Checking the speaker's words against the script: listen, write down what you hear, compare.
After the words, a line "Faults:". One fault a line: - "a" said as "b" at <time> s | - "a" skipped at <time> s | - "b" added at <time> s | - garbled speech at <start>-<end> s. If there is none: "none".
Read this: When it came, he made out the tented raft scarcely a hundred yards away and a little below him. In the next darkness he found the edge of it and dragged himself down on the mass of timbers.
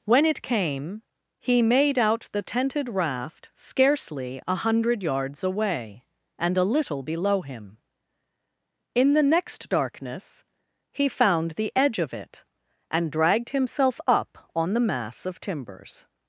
When it came, he made out the tented raft scarcely a hundred yards away and a little below him. In the next darkness he found the edge of it and dragged himself up on the mass of timbers.
Faults:
- "down" said as "up" at 14.1 s